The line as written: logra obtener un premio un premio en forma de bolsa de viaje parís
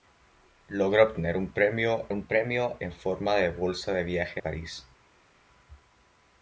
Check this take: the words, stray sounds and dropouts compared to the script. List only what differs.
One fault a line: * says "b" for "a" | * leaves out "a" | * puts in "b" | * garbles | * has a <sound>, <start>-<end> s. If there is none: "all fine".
all fine